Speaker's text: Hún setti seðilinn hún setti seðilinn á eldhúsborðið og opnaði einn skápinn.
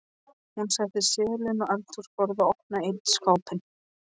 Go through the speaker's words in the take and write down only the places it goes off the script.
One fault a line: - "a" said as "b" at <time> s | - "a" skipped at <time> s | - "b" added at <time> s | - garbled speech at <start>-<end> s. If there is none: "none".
- "hún setti seðilinn" skipped at 1.6 s